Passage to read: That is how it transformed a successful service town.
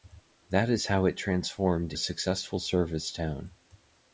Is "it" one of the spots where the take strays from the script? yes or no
no